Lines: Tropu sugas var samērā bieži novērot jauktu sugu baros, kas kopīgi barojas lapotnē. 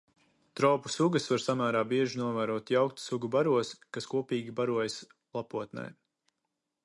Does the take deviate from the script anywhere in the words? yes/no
no